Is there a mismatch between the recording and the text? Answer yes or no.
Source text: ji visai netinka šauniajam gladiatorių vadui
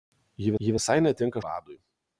yes